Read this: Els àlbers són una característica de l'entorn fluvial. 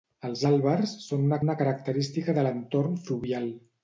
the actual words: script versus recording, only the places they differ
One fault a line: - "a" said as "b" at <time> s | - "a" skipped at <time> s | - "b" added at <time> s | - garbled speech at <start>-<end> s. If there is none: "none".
- "una" added at 1.4 s